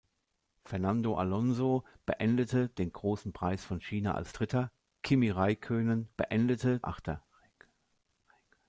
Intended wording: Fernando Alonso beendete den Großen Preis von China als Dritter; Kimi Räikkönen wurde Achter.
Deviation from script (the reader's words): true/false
true